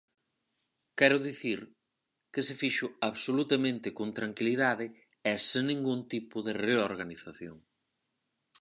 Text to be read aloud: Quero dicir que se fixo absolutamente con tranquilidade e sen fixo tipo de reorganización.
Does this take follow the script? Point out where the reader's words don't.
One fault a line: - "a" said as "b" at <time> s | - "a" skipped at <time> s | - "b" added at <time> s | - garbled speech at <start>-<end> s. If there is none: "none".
- "fixo" said as "ningún" at 5.7 s